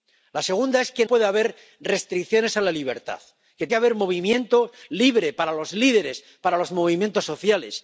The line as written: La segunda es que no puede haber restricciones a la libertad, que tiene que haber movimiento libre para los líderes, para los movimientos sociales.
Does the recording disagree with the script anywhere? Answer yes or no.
yes